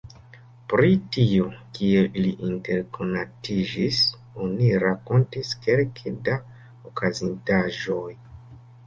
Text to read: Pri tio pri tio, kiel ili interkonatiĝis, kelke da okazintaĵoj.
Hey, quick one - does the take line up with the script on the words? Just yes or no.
no